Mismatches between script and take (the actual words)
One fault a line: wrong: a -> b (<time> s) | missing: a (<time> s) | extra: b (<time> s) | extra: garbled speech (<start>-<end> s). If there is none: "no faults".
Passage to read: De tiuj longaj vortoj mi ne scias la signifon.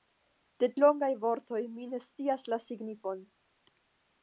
missing: tiuj (0.7 s)